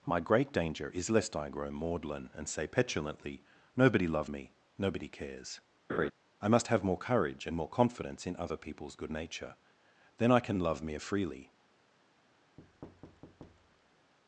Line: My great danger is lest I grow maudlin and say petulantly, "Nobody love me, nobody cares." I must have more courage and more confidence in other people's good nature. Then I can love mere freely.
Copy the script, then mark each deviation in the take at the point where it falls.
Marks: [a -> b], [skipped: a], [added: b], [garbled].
My great danger is lest I grow maudlin and say petulantly, "Nobody love me, nobody cares." I must have more courage and more confidence in other people's good nature. Then I can love mere freely.